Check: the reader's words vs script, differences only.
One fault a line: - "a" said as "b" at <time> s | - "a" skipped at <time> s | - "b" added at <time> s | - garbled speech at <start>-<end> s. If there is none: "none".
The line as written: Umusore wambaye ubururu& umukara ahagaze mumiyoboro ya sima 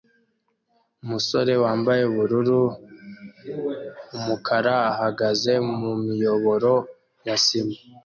none